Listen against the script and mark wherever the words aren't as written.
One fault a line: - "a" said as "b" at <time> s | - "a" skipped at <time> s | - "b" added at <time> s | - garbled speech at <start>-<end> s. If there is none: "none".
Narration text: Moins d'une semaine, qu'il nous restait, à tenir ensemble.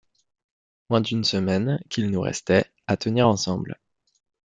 none